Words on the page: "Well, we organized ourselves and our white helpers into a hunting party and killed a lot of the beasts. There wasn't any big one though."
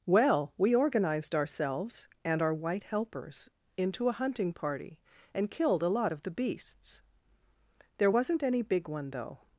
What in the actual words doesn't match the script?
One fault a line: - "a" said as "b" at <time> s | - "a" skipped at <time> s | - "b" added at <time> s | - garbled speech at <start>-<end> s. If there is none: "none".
none